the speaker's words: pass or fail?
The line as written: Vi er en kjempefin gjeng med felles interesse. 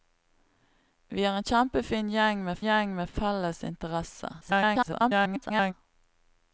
fail